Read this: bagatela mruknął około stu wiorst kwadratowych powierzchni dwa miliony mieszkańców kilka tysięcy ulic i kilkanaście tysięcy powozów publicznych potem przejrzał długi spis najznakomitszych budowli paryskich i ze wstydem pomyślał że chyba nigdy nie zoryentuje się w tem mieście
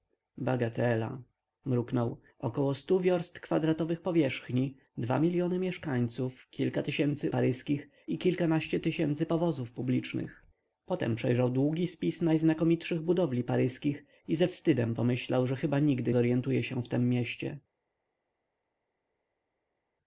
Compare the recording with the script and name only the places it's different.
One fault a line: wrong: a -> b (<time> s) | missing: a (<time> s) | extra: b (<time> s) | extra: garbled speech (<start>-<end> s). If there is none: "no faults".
wrong: ulic -> paryskich (7.3 s)
missing: nie (16.1 s)